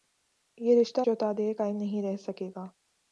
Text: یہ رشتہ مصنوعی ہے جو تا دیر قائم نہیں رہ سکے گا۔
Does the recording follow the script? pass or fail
fail